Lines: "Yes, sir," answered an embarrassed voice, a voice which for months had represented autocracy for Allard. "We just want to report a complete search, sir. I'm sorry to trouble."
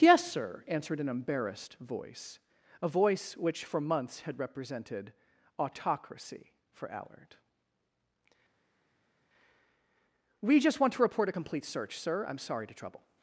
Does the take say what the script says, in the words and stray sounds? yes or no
yes